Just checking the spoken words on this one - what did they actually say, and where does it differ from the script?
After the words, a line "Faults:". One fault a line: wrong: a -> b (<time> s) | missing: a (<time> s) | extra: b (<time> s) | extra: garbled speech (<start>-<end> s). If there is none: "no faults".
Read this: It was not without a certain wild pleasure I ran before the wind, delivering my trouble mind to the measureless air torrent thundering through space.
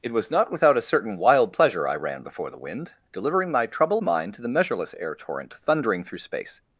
It was not without a certain wild pleasure I ran before the wind, delivering my trouble mind to the measureless air torrent thundering through space.
Faults:
no faults